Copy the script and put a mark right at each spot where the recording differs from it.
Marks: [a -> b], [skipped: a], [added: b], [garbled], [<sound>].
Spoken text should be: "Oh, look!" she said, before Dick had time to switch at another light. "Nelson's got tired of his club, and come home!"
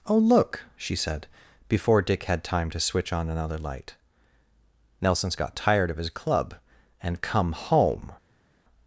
"Oh, look!" she said, before Dick had time to switch [at -> on] another light. "Nelson's got tired of his club, and come home!"